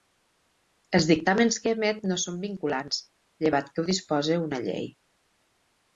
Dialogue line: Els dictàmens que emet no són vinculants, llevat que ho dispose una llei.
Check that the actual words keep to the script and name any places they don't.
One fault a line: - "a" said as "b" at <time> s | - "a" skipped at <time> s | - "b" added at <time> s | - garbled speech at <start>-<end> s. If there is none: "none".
none